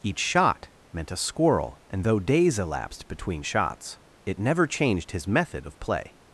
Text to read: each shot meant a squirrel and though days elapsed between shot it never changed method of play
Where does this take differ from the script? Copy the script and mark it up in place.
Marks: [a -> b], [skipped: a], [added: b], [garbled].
each shot meant a squirrel and though days elapsed between [shot -> shots] it never changed [added: his] method of play